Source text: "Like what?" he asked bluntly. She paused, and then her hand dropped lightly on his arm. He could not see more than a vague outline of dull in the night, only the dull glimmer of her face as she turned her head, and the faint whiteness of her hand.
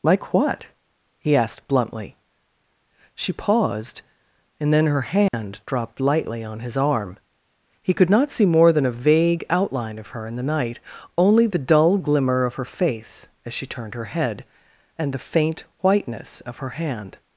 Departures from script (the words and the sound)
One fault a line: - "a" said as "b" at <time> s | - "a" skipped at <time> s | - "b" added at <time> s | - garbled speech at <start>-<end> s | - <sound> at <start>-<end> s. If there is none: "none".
- dropout at 5.3-5.3 s
- "dull" said as "her" at 10.1 s